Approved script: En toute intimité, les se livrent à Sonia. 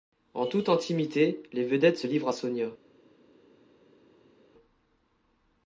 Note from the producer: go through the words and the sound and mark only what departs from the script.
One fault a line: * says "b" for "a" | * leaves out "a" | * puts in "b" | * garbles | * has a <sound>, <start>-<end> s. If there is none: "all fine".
* puts in "vedettes"